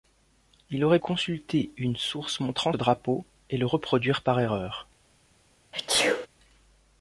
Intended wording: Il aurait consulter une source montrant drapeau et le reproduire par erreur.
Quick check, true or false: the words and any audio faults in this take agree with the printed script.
false